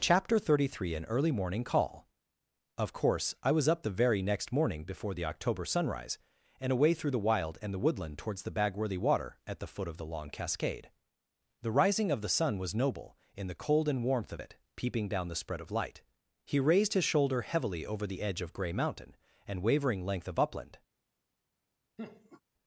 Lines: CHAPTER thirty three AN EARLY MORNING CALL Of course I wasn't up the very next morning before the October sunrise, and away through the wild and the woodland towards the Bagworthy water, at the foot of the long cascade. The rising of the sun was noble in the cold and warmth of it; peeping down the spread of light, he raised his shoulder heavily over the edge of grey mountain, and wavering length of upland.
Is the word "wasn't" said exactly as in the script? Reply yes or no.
no